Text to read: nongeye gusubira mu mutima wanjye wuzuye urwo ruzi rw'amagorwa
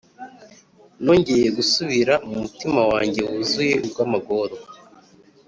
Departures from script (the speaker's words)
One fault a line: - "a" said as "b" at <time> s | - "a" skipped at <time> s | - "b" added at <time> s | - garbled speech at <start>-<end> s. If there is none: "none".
- "urwo ruzi" skipped at 3.8 s